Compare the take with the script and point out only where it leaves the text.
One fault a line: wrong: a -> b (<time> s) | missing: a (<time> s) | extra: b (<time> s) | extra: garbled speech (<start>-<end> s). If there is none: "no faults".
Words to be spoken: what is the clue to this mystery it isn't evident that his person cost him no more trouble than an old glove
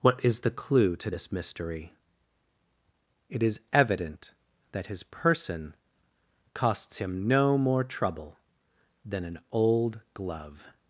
wrong: isn't -> is (3.4 s)
wrong: cost -> costs (6.5 s)